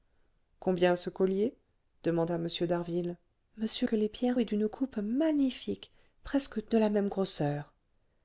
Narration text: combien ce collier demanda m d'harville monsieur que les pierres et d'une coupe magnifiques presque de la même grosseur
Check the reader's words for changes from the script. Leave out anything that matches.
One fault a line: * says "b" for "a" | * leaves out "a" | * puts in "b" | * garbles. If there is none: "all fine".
all fine